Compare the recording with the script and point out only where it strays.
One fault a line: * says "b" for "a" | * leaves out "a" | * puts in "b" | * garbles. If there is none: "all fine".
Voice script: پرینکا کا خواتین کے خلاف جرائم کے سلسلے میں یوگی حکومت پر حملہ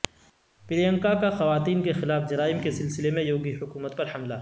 all fine